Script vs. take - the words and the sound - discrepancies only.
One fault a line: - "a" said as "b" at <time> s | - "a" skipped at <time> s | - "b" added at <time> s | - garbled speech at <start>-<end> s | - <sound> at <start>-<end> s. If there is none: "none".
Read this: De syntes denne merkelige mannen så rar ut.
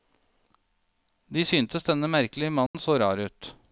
- dropout at 2.7-2.7 s